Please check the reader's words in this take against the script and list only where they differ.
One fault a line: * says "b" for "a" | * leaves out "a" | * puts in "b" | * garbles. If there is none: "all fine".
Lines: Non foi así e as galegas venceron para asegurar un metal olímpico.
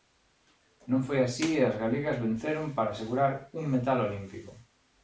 all fine